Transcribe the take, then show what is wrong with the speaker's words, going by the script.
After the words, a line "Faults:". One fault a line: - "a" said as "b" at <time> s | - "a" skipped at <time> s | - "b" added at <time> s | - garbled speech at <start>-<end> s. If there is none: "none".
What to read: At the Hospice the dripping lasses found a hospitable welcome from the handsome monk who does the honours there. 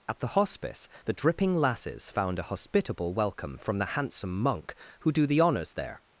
At the Hospice the dripping lasses found a hospitable welcome from the handsome monk who do the honours there.
Faults:
- "does" said as "do" at 5.1 s